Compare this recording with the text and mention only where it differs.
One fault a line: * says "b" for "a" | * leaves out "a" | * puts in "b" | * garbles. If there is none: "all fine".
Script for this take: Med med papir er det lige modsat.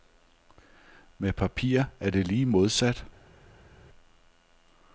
* leaves out "med"